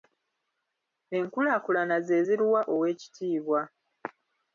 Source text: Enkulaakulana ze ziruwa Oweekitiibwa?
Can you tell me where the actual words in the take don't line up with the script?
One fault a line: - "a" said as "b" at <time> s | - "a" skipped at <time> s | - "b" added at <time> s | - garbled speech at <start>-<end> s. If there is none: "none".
none